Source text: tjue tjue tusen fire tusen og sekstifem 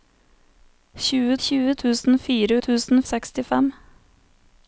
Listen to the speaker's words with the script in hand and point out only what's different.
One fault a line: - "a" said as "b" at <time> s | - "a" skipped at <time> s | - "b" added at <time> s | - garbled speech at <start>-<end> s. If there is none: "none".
none